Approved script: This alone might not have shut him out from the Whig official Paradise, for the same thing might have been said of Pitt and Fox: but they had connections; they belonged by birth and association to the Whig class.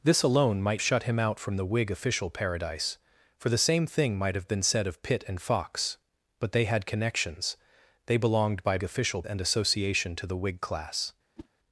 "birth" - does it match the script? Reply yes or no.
no